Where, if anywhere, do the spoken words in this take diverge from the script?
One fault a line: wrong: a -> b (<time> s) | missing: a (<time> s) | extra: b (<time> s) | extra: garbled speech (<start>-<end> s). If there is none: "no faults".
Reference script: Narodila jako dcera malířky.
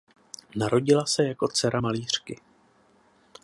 extra: se (1.1 s)